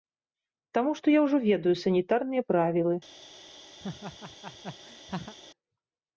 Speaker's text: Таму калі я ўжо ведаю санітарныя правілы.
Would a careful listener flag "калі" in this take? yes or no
yes